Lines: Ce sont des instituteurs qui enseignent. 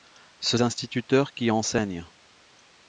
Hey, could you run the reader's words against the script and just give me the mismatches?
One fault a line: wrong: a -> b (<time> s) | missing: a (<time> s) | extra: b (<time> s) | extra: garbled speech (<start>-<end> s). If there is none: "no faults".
missing: sont des (0.6 s)